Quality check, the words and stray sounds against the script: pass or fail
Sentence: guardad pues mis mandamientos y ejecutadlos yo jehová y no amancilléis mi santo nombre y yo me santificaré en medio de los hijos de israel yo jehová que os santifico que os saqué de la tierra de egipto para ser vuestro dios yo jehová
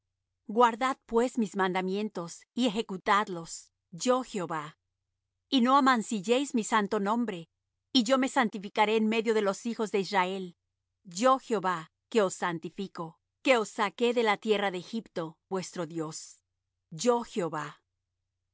fail